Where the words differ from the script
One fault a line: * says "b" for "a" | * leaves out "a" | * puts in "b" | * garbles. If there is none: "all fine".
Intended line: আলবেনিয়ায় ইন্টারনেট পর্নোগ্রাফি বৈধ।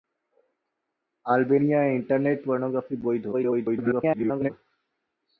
* garbles